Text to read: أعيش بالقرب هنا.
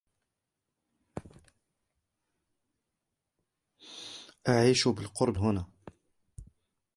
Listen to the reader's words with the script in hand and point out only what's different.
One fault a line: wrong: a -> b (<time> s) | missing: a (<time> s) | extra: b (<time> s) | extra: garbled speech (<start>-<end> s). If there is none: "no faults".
no faults